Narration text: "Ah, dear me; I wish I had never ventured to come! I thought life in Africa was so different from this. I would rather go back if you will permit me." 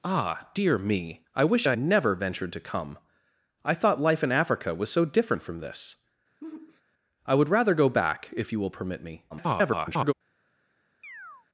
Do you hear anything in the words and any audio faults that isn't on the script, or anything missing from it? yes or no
yes